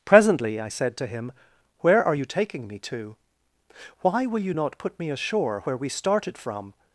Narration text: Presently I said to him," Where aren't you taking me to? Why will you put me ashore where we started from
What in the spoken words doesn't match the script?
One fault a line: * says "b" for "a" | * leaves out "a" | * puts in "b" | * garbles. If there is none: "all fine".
* says "are" for "aren't"
* puts in "not"